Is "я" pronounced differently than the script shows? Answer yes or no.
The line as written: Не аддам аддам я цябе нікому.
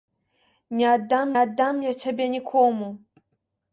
no